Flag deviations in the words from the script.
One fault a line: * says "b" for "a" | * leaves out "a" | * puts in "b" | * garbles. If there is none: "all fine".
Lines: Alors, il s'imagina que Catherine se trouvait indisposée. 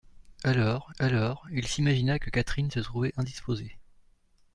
* puts in "alors"